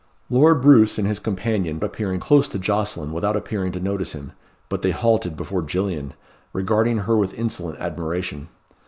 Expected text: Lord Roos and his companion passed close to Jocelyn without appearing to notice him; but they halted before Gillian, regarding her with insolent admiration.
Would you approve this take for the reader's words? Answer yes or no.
no